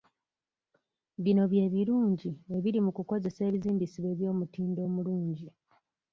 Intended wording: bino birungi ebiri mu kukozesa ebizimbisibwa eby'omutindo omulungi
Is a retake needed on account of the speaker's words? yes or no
yes